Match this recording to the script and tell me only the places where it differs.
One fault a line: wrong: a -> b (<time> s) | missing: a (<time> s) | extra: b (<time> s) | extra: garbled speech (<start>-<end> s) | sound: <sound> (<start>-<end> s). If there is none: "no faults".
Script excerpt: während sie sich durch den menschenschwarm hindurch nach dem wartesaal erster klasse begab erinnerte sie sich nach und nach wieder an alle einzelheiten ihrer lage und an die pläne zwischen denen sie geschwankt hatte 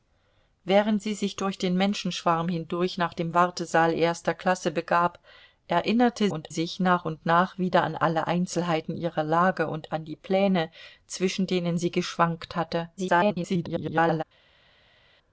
wrong: sie -> und (6.3 s)
extra: garbled speech (13.0-14.2 s)